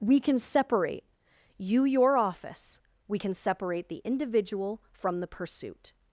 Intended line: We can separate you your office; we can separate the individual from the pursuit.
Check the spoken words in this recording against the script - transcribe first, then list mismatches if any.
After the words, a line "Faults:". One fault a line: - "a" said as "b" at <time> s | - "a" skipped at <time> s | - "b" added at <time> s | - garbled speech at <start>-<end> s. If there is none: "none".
We can separate you your office; we can separate the individual from the pursuit.
Faults:
none